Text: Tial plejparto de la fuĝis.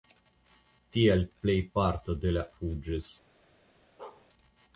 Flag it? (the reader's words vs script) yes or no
no